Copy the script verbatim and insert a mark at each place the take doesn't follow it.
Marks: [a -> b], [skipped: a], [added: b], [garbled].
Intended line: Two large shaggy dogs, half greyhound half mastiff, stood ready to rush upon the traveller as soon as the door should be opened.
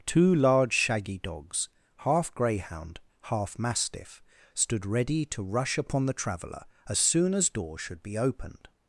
Two large shaggy dogs, half greyhound half mastiff, stood ready to rush upon the traveller as soon as [skipped: the] door should be opened.